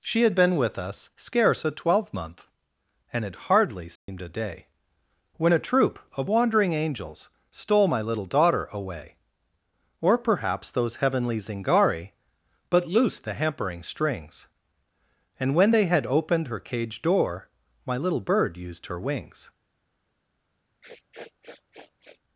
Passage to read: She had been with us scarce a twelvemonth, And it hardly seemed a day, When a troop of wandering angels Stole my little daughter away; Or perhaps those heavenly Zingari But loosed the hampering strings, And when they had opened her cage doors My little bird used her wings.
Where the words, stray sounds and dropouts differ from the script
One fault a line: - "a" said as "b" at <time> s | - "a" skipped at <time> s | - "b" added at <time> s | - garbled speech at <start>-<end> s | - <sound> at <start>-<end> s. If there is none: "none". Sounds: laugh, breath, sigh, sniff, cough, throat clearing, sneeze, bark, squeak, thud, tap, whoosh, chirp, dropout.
- dropout at 4.0-4.1 s
- "doors" said as "door" at 17.0 s
- sniff at 20.8-22.2 s